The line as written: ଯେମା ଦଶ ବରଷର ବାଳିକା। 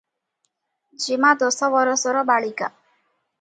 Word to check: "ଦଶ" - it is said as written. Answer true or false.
true